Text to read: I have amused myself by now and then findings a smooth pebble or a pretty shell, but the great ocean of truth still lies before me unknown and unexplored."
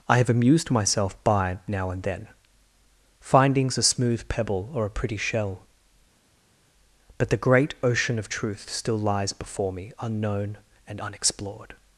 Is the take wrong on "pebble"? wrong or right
right